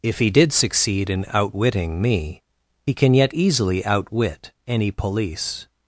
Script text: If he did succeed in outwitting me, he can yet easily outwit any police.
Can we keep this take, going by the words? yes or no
yes